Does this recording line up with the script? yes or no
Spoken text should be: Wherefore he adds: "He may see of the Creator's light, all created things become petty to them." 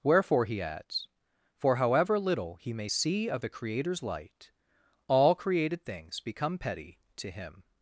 no